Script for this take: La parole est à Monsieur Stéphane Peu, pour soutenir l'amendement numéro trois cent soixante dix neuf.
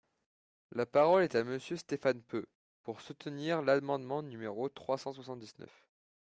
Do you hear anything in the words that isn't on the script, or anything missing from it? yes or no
no